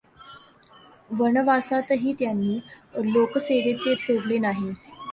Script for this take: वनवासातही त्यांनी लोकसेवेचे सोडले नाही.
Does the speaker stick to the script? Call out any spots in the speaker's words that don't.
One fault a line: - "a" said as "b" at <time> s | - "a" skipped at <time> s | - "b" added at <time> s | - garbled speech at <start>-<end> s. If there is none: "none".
none